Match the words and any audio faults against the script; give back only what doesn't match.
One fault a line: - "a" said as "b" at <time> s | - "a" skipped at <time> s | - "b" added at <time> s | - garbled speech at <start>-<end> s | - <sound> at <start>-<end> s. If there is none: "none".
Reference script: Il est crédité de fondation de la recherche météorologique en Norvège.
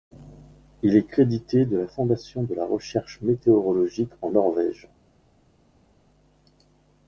- "la" added at 1.8 s